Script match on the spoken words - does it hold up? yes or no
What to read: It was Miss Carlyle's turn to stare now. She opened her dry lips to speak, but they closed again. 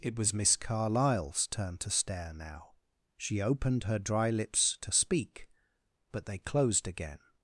yes